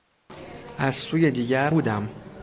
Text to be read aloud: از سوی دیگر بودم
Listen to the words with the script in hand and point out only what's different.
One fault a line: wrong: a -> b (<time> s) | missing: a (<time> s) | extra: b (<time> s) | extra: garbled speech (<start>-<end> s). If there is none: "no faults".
no faults